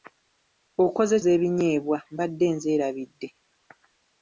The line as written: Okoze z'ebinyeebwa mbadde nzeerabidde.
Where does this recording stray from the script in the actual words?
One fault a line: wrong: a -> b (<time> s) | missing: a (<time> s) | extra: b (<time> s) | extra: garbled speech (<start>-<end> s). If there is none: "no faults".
no faults